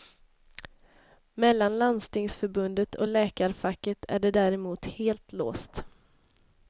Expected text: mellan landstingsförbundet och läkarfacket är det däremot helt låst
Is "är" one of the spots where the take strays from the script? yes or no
no